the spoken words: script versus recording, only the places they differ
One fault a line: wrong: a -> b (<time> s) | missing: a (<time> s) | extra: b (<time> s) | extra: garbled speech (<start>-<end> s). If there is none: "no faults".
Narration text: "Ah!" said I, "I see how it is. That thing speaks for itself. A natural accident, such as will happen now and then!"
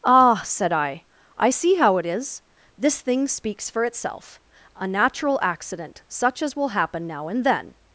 wrong: That -> This (2.8 s)